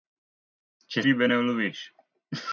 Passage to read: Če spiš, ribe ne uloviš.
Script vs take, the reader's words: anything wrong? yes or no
yes